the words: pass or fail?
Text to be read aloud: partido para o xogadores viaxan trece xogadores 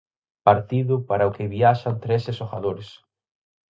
fail